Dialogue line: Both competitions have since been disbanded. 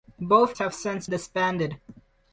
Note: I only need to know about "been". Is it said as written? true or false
false